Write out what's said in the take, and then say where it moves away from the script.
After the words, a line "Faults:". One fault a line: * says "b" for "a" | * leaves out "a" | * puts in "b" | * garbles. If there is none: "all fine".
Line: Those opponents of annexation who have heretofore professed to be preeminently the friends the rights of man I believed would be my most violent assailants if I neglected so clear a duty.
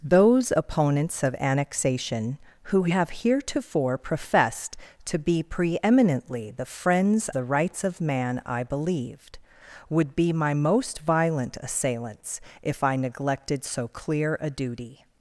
Those opponents of annexation who have heretofore professed to be preeminently the friends the rights of man I believed would be my most violent assailants if I neglected so clear a duty.
Faults:
all fine